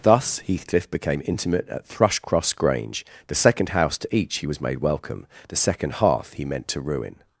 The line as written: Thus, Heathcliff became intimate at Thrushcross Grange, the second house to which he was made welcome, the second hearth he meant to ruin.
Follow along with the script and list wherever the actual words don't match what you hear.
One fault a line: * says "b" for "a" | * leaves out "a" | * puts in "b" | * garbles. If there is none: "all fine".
* says "each" for "which"